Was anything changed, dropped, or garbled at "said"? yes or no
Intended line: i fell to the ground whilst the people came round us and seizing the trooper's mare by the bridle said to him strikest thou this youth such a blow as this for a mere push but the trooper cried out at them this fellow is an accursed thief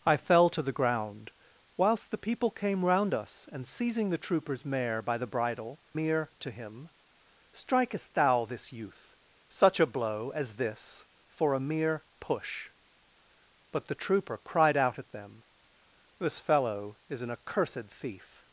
yes